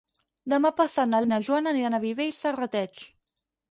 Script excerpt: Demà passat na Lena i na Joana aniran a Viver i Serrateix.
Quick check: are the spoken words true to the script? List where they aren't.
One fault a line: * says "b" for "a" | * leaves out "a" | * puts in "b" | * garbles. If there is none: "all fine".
* leaves out "Lena"